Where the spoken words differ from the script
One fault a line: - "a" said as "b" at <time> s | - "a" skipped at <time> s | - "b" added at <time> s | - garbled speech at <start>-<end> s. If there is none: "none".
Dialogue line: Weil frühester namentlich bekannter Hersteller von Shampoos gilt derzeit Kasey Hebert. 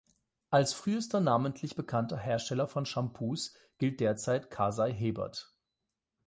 - "Weil" said as "Als" at 0.5 s